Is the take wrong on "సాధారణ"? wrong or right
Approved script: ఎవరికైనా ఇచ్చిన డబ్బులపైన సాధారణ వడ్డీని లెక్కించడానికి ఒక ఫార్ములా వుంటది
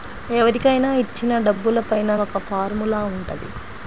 wrong